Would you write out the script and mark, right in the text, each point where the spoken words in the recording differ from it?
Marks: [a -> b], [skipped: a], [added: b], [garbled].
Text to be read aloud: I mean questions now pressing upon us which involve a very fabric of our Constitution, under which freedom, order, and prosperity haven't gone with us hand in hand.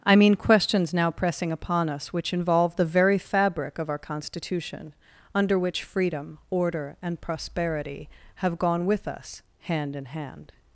I mean questions now pressing upon us which involve [a -> the] very fabric of our Constitution, under which freedom, order, and prosperity [haven't -> have] gone with us hand in hand.